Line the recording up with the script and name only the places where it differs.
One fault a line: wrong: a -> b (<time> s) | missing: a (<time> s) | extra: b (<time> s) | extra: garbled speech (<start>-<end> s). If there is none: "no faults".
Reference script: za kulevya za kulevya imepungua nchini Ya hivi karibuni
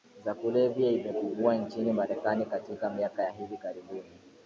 wrong: za kulevya imepungua nchini -> imepungua nchini Marekani katika miaka (0.9 s)